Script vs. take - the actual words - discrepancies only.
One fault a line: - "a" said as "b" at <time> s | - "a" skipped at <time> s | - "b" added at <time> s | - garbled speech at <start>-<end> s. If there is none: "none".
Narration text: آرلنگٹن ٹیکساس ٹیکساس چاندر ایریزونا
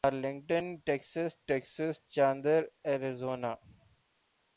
none